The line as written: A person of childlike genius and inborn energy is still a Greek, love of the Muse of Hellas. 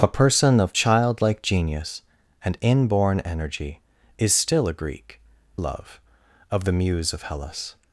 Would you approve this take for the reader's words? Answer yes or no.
yes